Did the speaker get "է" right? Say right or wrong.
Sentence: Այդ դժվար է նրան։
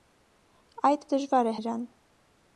right